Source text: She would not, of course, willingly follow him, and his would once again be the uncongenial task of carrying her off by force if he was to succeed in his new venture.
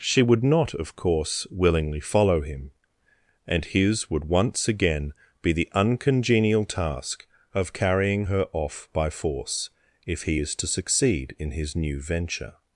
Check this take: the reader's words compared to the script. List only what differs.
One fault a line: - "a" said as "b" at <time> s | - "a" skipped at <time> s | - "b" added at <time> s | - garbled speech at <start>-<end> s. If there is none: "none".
- "was" said as "is" at 10.4 s